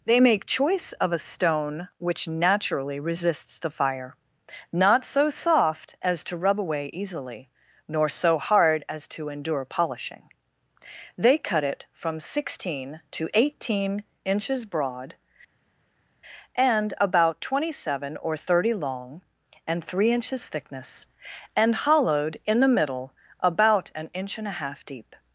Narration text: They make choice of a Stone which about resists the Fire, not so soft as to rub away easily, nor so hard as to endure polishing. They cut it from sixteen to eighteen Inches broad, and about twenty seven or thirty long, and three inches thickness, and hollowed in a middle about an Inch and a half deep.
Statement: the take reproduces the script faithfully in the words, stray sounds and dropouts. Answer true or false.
false